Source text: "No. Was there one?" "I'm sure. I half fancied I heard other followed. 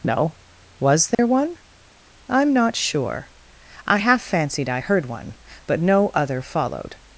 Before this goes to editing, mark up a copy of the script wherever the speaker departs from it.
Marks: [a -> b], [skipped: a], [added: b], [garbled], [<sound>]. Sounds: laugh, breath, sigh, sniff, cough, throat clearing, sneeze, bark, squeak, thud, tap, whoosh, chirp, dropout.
"No. Was there [dropout] one?" "I'm [added: not] sure. I half fancied I heard [added: one but no] other followed.